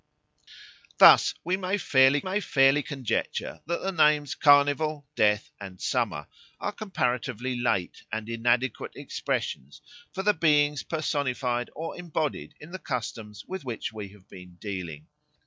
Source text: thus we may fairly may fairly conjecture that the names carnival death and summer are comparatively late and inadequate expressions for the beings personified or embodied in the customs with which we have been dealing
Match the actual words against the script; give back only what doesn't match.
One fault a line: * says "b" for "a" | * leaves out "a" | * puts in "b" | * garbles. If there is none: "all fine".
all fine